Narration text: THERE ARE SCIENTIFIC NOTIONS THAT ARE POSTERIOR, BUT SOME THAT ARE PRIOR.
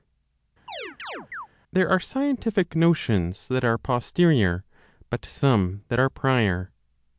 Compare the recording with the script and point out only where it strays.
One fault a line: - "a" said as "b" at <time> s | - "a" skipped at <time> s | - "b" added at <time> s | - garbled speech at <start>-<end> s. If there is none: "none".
none